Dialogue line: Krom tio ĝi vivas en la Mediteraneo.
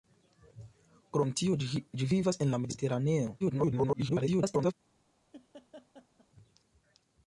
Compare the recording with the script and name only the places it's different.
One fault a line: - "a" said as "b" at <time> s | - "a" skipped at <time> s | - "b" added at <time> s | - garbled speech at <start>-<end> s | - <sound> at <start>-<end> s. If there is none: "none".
- garbled speech at 3.4-4.7 s
- laugh at 5.3-6.3 s